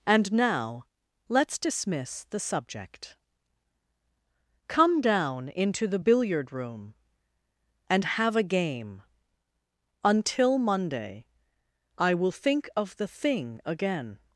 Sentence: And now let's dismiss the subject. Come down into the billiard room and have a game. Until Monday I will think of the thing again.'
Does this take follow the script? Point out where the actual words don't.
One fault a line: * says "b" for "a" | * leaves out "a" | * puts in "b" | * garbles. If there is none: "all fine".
all fine